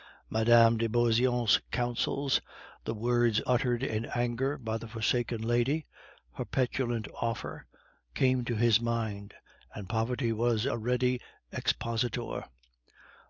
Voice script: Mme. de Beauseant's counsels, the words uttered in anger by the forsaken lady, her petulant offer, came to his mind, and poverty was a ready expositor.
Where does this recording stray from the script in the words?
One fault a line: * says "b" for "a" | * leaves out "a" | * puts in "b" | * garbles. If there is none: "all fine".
all fine